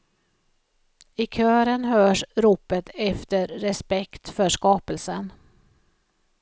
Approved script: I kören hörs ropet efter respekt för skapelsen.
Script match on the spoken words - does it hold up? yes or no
yes